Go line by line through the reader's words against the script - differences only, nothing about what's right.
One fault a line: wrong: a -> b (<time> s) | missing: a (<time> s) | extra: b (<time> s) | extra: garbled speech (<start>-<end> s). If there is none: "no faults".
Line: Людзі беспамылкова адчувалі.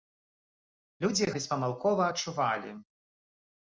no faults